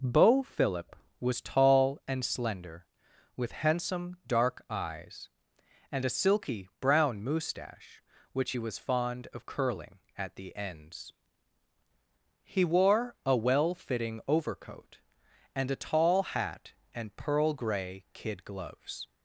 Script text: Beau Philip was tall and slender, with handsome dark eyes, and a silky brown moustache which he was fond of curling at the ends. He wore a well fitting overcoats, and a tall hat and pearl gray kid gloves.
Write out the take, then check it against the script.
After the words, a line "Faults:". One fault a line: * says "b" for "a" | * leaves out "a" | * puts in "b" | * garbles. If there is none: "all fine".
Beau Philip was tall and slender, with handsome dark eyes, and a silky brown moustache which he was fond of curling at the ends. He wore a well fitting overcoat, and a tall hat and pearl gray kid gloves.
Faults:
* says "overcoat" for "overcoats"